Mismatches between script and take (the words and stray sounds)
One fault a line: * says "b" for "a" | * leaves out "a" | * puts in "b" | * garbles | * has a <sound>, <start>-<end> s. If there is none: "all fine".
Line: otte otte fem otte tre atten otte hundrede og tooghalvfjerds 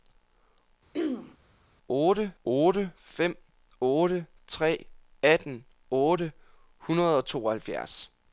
* has a throat clearing, 0.9-1.4 s